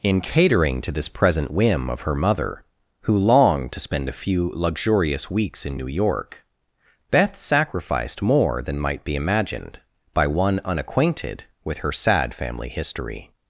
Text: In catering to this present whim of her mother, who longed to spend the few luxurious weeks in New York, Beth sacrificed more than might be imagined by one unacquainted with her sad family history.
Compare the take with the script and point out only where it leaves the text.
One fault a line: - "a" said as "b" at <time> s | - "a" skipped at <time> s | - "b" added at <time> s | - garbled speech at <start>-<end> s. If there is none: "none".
- "the" said as "a" at 4.1 s